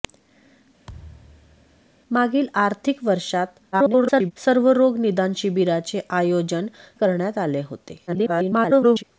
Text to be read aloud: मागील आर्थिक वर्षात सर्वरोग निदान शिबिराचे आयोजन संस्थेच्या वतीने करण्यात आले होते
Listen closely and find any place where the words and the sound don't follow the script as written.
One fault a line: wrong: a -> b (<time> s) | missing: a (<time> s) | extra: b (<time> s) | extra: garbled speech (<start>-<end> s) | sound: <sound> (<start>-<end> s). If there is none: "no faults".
sound: thud (0.9-1.8 s)
extra: garbled speech (3.7-4.3 s)
missing: संस्थेच्या वतीने (6.7 s)
extra: garbled speech (8.1-9.0 s)